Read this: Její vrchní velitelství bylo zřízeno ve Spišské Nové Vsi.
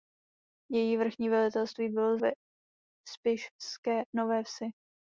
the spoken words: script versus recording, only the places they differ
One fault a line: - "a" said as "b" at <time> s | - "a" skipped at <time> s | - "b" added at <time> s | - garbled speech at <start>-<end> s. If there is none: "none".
- "zřízeno" skipped at 2.2 s